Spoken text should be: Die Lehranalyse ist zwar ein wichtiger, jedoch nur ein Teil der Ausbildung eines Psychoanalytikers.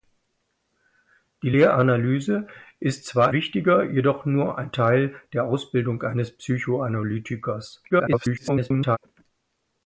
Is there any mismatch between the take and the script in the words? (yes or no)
yes